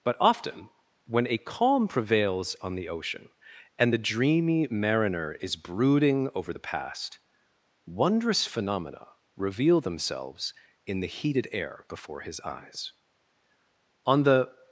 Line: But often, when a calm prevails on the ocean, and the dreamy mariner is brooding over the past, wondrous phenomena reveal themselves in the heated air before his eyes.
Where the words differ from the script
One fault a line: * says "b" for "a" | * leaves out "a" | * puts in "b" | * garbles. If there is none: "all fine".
* puts in "On the"